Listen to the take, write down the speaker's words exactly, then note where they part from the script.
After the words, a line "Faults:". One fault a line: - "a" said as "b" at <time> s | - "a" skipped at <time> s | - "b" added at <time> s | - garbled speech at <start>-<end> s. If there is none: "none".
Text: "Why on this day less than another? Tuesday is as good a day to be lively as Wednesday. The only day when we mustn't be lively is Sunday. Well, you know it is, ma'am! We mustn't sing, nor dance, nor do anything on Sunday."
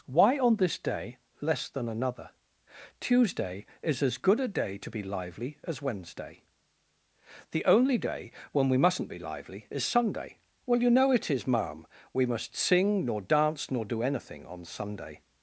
"Why on this day less than another? Tuesday is as good a day to be lively as Wednesday. The only day when we mustn't be lively is Sunday. Well, you know it is, ma'am! We must sing, nor dance, nor do anything on Sunday."
Faults:
- "mustn't" said as "must" at 12.2 s